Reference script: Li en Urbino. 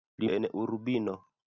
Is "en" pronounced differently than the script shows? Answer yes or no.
no